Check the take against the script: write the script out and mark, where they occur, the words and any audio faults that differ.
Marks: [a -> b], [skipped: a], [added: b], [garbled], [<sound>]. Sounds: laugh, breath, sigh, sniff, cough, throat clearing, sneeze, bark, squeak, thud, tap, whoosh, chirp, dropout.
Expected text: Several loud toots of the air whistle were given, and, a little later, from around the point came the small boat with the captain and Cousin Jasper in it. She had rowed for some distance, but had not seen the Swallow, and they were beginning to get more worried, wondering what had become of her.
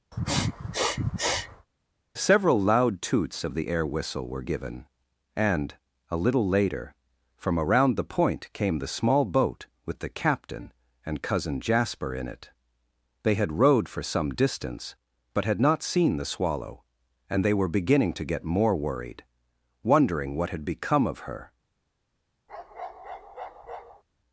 [sniff] Several loud toots of the air whistle were given, and, a little later, from around the point came the small boat with the captain and Cousin Jasper in it. [She -> They] had rowed for some distance, but had not seen the Swallow, and they were beginning to get more worried, wondering what had become of her. [bark]